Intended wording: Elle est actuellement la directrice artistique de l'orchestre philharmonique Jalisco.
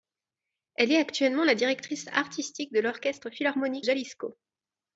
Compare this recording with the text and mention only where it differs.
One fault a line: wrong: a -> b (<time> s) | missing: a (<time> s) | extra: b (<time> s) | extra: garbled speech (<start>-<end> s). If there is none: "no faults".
no faults